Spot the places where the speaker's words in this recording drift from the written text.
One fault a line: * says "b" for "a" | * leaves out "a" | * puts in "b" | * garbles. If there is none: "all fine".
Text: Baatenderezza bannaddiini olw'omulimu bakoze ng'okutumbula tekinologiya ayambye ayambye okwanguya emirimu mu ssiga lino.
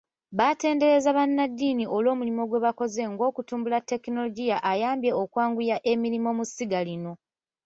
* puts in "gwe"
* leaves out "ayambye"